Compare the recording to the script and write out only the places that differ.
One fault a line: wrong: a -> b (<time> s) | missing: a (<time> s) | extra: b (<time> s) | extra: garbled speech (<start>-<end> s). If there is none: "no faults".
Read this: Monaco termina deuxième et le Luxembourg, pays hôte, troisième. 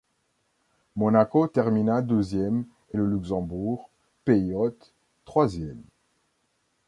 no faults